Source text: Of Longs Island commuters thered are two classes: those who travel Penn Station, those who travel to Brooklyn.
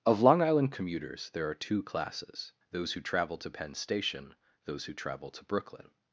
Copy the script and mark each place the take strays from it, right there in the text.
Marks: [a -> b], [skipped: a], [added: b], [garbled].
Of [Longs -> Long] Island commuters [thered -> there] are two classes: those who travel [added: to] Penn Station, those who travel to Brooklyn.